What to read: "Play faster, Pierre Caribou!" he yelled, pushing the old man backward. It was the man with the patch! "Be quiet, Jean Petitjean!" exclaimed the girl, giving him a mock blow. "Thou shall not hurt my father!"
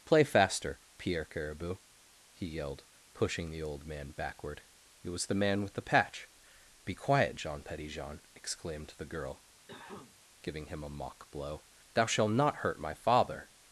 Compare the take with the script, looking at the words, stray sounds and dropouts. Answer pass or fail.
fail